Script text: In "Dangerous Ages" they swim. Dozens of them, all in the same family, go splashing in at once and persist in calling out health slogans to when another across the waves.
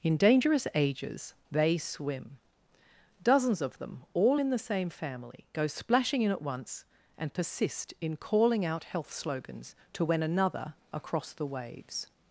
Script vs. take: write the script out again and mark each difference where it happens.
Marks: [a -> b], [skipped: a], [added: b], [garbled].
In "Dangerous Ages" they swim. Dozens of them, all in the same family, go splashing in at once and persist in calling out health slogans to when another across the waves.